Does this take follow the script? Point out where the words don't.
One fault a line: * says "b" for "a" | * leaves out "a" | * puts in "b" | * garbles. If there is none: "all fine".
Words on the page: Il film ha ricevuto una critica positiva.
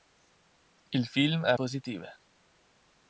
* leaves out "ricevuto una critica"